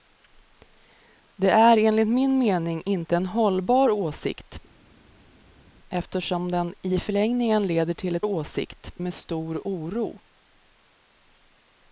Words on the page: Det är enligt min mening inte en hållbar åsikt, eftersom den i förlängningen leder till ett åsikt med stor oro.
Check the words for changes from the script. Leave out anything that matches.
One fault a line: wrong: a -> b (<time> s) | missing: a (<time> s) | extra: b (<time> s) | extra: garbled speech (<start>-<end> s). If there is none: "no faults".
no faults